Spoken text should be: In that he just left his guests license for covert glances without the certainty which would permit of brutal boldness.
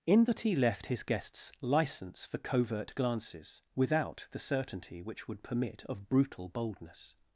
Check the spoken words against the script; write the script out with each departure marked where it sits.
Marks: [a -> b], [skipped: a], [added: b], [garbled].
In that he [skipped: just] left his guests license for covert glances without the certainty which would permit of brutal boldness.